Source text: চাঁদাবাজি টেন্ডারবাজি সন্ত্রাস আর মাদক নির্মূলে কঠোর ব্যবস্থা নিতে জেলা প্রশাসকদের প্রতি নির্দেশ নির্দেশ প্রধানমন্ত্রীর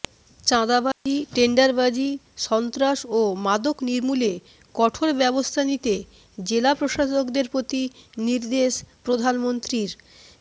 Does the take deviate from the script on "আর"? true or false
true